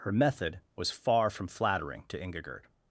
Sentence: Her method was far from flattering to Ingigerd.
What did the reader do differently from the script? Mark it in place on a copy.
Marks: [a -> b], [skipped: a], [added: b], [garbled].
Her method was far from flattering to Ingigerd.